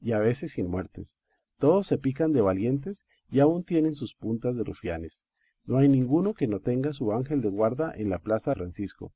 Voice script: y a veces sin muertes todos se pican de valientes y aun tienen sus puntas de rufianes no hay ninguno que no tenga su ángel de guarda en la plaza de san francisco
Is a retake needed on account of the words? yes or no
yes